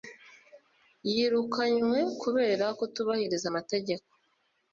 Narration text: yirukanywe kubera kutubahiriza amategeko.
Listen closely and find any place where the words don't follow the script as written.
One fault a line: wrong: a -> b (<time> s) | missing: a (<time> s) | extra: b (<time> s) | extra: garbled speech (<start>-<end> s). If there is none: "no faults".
no faults